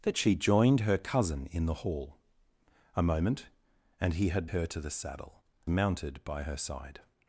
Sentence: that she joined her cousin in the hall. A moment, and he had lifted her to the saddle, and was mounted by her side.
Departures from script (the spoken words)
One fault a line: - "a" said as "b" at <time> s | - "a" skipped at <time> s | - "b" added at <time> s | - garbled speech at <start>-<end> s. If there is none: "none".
- "lifted" skipped at 4.5 s
- "and was" skipped at 5.4 s